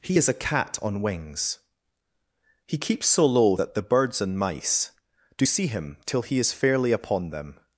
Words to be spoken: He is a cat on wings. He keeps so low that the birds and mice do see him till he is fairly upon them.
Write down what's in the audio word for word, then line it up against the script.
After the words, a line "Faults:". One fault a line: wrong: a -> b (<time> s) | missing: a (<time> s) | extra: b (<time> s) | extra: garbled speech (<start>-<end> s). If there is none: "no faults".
He is a cat on wings. He keeps so low that the birds and mice do see him till he is fairly upon them.
Faults:
no faults